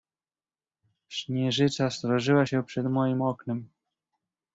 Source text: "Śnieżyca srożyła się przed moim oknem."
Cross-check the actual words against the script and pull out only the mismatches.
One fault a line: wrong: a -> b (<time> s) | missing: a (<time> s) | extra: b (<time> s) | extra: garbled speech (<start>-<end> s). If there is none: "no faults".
no faults